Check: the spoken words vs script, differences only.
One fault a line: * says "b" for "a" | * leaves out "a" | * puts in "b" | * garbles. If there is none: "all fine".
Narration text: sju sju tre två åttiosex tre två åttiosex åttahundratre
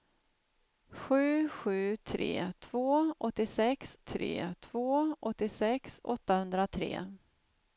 all fine